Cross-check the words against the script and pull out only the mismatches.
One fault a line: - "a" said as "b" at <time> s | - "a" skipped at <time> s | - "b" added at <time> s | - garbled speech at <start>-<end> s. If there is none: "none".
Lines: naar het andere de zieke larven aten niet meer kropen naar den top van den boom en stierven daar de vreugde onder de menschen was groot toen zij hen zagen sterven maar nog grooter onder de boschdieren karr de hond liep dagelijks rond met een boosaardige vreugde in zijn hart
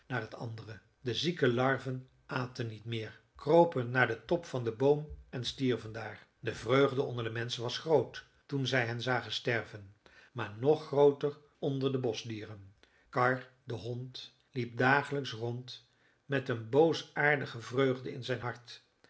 none